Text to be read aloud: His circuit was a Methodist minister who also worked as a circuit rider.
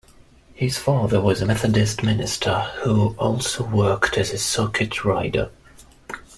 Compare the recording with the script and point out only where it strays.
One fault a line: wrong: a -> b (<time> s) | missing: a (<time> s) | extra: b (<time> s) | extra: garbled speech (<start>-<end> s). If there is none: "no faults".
wrong: circuit -> father (0.8 s)